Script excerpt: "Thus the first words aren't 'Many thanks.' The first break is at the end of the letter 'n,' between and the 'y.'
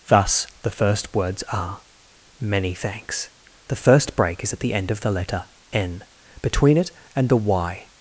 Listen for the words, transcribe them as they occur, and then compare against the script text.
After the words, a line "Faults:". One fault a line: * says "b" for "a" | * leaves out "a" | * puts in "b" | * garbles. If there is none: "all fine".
"Thus the first words are 'Many thanks.' The first break is at the end of the letter 'n,' between it and the 'y.'
Faults:
* says "are" for "aren't"
* puts in "it"